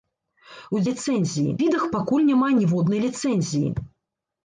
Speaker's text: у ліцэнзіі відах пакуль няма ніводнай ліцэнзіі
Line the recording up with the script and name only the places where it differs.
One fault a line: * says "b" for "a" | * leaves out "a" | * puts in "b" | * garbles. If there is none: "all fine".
all fine